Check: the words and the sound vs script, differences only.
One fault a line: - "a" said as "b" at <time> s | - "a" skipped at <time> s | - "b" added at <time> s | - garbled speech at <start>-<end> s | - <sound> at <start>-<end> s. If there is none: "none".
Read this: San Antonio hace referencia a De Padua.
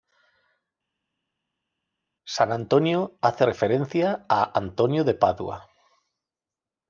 - "Antonio" added at 4.6 s